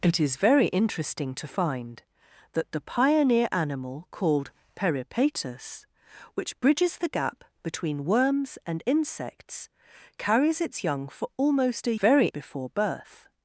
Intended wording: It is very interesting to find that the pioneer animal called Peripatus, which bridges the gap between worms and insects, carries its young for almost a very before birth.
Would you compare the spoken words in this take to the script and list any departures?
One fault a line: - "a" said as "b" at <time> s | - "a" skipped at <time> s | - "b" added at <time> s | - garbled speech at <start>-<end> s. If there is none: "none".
none